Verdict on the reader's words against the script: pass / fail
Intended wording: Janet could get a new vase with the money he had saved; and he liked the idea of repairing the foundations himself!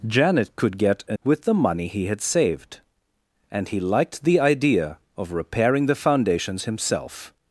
fail